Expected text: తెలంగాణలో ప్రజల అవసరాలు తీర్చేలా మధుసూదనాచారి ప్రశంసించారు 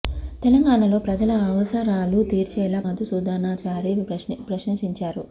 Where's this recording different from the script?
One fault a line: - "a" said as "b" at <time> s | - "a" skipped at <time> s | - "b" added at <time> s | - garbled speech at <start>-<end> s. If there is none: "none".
none